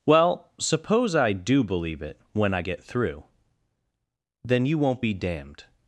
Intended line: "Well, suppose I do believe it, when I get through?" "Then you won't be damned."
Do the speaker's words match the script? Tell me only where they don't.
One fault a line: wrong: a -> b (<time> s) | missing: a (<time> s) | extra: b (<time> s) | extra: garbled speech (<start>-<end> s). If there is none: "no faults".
no faults